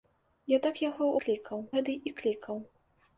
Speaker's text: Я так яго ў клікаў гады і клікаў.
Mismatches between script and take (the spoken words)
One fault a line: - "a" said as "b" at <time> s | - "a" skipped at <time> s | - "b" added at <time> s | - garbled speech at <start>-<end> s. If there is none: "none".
none